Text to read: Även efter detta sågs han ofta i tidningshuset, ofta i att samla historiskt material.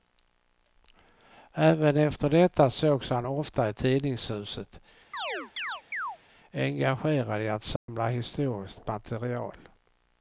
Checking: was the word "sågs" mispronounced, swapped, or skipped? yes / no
no